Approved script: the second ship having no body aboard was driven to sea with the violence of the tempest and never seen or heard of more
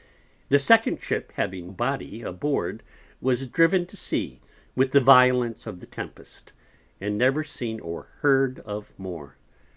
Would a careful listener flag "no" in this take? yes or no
yes